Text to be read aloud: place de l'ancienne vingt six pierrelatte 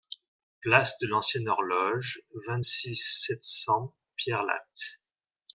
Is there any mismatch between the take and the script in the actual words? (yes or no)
yes